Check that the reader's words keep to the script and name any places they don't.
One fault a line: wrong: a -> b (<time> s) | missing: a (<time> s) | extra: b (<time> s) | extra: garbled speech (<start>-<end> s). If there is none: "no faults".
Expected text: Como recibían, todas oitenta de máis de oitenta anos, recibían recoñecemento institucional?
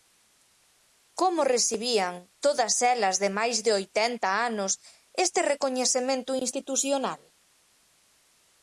wrong: oitenta -> elas (2.9 s)
wrong: recibían -> este (5.2 s)